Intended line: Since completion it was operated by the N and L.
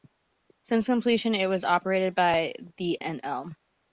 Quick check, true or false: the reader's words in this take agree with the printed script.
false